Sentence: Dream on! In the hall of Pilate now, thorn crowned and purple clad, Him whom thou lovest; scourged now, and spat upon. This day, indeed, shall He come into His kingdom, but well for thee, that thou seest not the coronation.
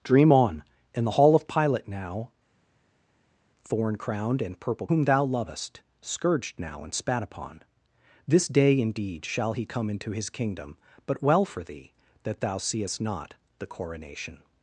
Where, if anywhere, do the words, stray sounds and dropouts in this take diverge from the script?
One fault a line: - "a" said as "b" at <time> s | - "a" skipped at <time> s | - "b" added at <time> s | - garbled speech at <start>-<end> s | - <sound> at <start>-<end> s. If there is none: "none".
- "clad Him" skipped at 4.9 s